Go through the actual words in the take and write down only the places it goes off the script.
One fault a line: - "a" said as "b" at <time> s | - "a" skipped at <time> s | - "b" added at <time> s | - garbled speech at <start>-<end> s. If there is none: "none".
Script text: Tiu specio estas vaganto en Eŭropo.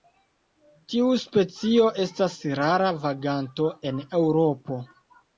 - "rara" added at 2.6 s